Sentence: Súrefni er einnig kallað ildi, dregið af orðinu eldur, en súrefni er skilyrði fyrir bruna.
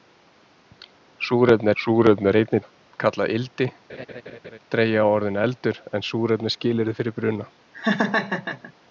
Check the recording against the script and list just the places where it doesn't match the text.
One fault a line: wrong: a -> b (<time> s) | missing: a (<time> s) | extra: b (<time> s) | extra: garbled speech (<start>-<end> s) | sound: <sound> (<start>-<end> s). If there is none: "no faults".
extra: súrefni (1.8 s)
sound: laugh (3.9-4.6 s)
sound: laugh (7.7-8.7 s)